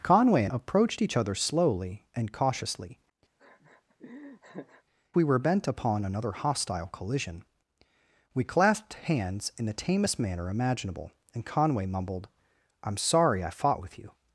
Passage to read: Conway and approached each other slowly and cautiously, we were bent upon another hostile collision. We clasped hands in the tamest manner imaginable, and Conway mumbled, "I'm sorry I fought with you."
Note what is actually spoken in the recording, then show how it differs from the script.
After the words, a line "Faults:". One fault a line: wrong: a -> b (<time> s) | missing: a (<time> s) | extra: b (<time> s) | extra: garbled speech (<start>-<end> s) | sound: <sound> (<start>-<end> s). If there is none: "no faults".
Conway and approached each other slowly and cautiously, we were bent upon another hostile collision. We clasped hands in the tamest manner imaginable, and Conway mumbled, "I'm sorry I fought with you."
Faults:
sound: laugh (3.4-4.8 s)